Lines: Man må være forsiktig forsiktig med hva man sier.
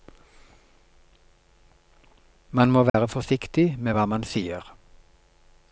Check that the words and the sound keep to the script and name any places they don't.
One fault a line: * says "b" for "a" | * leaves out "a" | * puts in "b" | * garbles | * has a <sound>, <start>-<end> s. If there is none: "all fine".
* has a dropout, 2.9-2.9 s
* leaves out "forsiktig"